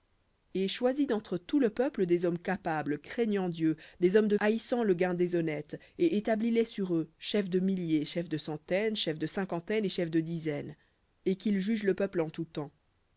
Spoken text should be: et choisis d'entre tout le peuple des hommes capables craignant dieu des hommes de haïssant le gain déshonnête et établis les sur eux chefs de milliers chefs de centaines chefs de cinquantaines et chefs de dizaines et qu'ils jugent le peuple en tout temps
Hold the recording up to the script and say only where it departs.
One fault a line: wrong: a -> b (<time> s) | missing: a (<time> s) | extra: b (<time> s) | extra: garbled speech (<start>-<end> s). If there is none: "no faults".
no faults